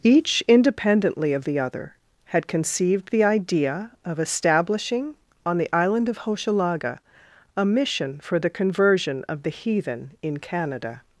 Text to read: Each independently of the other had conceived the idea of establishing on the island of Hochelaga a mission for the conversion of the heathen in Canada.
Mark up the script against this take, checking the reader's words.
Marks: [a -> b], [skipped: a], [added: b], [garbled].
Each independently of the other had conceived the idea of establishing on the island of Hochelaga a mission for the conversion of the heathen in Canada.